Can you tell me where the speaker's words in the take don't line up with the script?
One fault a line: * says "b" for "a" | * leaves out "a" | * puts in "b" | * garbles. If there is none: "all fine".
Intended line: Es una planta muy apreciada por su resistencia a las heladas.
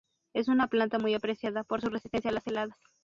all fine